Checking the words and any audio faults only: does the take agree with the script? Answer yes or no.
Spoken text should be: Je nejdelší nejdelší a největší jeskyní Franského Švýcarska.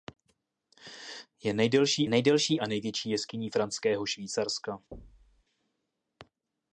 no